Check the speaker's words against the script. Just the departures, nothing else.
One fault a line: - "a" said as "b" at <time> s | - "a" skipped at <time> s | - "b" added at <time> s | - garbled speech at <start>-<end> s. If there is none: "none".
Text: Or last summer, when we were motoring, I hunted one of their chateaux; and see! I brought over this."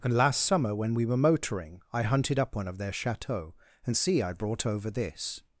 - "Or" said as "And" at 0.0 s
- "up" added at 2.4 s